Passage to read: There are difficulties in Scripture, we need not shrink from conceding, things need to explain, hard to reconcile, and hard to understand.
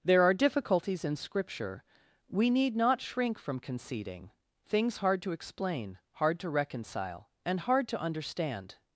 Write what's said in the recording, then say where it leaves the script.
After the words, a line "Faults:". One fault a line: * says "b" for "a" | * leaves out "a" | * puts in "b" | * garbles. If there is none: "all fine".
There are difficulties in Scripture, we need not shrink from conceding, things hard to explain, hard to reconcile, and hard to understand.
Faults:
* says "hard" for "need"